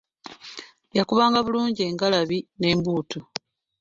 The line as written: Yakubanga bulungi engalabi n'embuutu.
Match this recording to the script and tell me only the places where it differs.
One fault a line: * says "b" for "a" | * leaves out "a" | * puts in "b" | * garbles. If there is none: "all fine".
all fine